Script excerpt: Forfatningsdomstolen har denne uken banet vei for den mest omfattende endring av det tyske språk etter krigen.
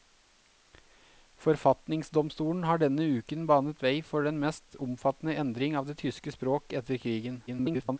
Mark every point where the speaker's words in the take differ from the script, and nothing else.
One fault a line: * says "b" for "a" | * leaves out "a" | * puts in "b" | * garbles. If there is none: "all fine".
* garbles